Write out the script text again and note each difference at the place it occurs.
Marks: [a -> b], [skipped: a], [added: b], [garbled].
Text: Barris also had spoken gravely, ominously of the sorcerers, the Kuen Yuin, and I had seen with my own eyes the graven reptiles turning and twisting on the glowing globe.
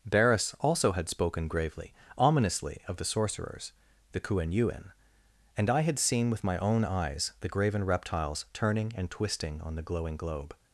Barris also had spoken gravely, ominously of the sorcerers, the Kuen Yuin, and I had seen with my own eyes the graven reptiles turning and twisting on the glowing globe.